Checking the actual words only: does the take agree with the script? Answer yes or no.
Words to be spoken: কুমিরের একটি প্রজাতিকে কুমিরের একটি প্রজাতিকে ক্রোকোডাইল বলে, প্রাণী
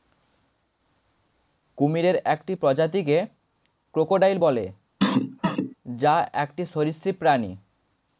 no